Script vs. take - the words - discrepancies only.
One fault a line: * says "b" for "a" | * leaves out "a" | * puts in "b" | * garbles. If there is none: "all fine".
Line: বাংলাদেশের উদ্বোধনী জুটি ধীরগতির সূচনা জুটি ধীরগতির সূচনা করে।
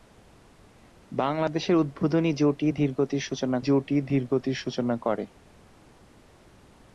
all fine